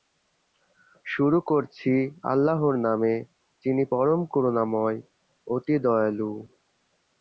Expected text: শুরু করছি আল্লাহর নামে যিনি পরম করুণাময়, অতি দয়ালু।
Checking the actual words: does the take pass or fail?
pass